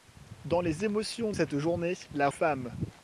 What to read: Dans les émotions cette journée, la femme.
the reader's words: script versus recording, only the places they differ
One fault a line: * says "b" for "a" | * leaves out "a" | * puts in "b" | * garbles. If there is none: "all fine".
all fine